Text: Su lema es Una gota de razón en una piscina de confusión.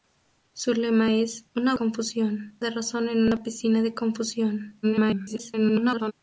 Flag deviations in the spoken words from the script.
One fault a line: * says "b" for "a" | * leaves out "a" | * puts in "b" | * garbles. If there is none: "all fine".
* says "confusión" for "gota"
* garbles